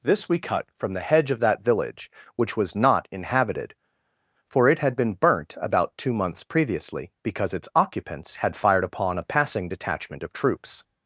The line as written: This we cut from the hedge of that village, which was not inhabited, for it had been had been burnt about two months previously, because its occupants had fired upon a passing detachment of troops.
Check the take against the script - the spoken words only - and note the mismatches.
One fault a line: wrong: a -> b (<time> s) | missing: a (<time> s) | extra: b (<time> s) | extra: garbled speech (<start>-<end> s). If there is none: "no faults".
missing: had been (5.1 s)